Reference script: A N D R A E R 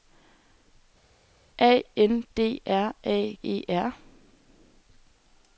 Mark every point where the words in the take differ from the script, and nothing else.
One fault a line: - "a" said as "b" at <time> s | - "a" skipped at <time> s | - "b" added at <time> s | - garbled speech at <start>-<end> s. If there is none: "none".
none